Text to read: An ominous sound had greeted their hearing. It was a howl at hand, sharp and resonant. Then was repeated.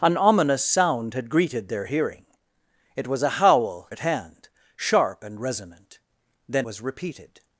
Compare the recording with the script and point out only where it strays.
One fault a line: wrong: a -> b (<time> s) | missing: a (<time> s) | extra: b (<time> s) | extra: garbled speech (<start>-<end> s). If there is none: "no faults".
no faults